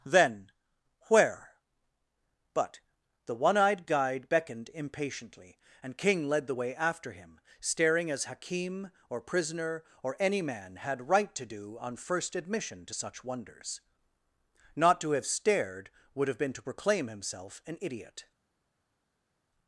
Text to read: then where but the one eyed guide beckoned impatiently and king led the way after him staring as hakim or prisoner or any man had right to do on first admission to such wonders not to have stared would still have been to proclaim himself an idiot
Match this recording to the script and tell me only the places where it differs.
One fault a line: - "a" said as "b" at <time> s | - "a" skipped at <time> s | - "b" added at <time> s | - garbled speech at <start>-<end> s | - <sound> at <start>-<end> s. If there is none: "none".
- "still" skipped at 16.3 s